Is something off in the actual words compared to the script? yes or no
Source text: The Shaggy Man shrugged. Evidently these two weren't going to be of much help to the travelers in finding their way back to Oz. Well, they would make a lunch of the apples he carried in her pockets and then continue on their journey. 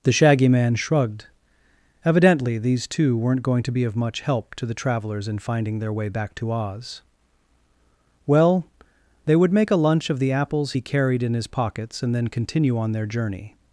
yes